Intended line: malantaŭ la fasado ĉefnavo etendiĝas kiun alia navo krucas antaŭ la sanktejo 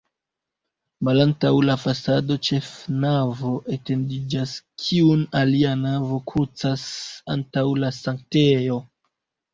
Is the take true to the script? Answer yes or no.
yes